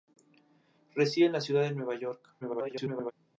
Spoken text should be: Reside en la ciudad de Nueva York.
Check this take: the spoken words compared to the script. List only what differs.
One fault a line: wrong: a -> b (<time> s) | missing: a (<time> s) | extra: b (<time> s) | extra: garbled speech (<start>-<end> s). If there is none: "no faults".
extra: garbled speech (2.4-3.1 s)